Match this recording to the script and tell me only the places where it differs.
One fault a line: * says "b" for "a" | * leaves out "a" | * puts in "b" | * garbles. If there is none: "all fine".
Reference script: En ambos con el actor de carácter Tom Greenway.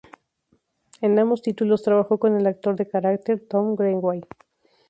* puts in "títulos trabajó"